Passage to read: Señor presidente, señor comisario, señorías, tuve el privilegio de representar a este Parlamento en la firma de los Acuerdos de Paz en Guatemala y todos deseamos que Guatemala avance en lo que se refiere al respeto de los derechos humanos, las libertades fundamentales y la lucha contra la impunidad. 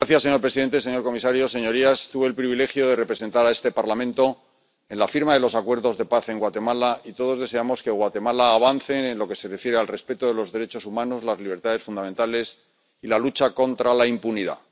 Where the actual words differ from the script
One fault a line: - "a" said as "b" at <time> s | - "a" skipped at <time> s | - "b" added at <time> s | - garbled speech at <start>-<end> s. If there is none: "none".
none